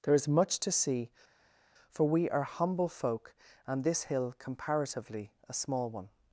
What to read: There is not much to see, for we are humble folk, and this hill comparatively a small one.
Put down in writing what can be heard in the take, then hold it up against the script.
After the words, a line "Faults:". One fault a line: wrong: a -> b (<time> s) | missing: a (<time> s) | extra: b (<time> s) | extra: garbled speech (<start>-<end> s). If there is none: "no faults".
There is much to see, for we are humble folk, and this hill comparatively a small one.
Faults:
missing: not (0.3 s)